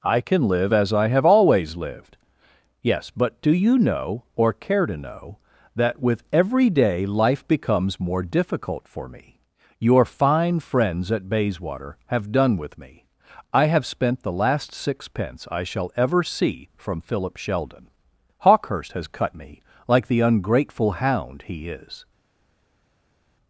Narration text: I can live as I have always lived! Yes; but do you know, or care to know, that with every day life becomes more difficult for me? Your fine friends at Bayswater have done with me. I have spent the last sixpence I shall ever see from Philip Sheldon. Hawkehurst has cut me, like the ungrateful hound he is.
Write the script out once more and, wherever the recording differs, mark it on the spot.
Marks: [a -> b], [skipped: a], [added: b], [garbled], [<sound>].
I can live as I have always lived! Yes; but do you know, or care to know, that with every day life becomes more difficult for me? Your fine friends at Bayswater have done with me. I have spent the last sixpence I shall ever see from Philip Sheldon. Hawkehurst has cut me, like the ungrateful hound he is.